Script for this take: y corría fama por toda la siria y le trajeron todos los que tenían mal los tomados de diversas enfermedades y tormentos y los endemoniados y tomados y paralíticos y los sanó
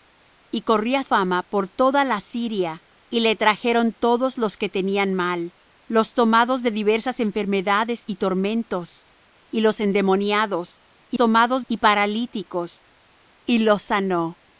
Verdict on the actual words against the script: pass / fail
pass